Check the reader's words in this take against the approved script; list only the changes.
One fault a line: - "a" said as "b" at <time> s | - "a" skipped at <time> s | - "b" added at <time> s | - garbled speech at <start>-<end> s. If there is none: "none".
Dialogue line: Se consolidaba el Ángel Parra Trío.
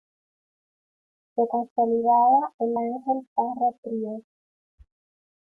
none